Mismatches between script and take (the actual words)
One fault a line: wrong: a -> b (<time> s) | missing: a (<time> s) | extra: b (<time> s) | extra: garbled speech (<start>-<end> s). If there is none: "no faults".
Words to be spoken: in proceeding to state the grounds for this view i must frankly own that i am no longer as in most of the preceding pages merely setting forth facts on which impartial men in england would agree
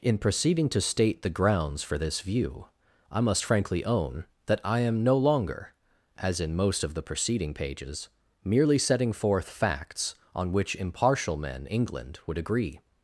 missing: in (11.7 s)